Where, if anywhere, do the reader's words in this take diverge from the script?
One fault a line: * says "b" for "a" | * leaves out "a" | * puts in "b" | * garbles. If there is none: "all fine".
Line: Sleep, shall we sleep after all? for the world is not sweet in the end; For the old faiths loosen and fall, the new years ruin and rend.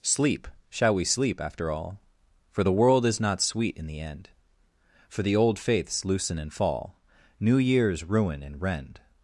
* leaves out "the"